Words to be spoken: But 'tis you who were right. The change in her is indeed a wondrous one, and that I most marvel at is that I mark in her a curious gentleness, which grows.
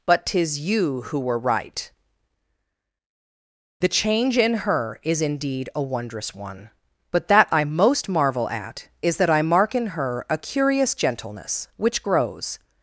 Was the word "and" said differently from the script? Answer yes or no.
yes